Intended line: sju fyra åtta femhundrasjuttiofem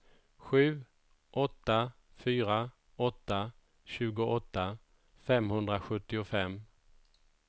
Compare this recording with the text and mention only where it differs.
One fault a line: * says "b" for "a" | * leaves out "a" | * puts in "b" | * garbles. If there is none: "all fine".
* puts in "åtta"
* puts in "tjugoåtta"